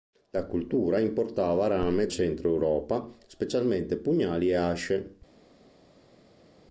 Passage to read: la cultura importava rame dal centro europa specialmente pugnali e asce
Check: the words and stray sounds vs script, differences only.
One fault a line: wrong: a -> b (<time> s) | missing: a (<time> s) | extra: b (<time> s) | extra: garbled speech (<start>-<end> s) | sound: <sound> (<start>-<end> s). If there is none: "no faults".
missing: dal (2.1 s)